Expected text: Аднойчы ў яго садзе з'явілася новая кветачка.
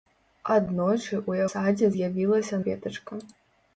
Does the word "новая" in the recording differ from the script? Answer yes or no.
yes